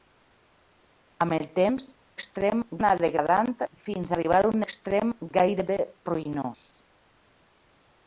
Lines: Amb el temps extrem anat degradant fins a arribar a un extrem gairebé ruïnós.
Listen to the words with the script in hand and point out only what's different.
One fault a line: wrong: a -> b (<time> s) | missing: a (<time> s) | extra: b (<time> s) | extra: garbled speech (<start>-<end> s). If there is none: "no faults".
no faults